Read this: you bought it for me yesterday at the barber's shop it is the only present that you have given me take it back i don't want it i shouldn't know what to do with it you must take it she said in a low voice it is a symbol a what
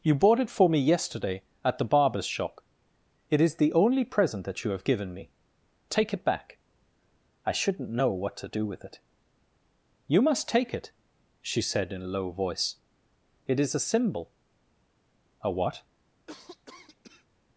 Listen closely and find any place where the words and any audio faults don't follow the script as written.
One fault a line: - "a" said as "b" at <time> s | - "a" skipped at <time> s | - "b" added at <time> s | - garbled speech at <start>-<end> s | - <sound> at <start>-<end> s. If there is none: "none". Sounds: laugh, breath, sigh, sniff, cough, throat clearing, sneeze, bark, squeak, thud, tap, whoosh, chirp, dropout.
- "don't want it i" skipped at 7.5 s
- cough at 16.3-17.3 s